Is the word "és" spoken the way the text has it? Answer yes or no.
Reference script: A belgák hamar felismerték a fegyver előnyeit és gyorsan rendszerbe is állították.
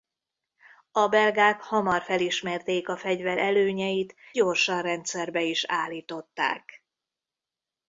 no